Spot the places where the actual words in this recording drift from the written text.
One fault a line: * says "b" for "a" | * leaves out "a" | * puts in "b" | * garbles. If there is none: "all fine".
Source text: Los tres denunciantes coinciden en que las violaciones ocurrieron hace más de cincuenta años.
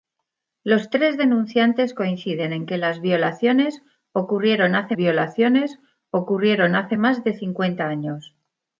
* puts in "violaciones ocurrieron hace"